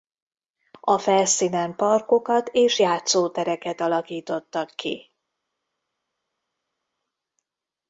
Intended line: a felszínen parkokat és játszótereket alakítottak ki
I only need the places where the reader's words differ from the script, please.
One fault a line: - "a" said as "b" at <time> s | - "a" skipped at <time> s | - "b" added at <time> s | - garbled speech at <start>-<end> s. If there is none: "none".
none